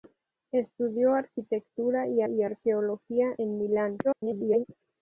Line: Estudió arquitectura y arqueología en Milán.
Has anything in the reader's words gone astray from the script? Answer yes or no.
yes